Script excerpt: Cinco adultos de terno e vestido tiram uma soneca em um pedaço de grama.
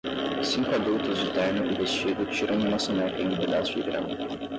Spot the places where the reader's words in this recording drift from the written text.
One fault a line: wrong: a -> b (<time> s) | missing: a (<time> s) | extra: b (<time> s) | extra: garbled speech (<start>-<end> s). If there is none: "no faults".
no faults